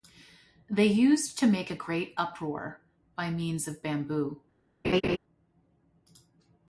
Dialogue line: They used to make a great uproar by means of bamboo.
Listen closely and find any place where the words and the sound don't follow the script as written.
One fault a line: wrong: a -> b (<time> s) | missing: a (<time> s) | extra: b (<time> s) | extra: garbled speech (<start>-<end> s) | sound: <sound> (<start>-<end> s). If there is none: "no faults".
sound: laugh (4.8-5.2 s)